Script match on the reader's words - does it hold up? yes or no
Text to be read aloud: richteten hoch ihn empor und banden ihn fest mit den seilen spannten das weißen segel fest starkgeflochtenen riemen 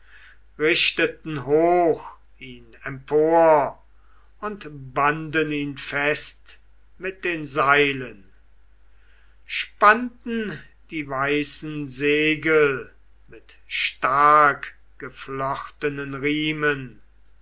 no